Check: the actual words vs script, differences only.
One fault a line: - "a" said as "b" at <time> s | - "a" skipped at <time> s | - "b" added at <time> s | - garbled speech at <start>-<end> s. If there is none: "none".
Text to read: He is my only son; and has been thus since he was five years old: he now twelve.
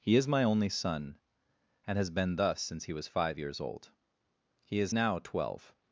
- "is" added at 4.8 s